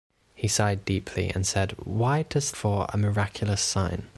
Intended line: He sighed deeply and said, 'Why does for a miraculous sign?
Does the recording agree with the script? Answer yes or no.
yes